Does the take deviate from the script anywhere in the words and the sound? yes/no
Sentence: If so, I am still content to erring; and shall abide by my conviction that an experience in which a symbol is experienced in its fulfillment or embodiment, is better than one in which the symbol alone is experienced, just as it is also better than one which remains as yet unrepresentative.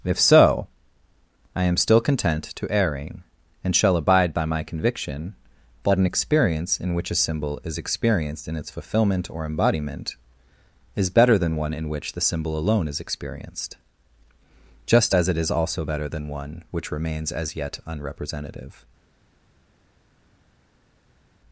no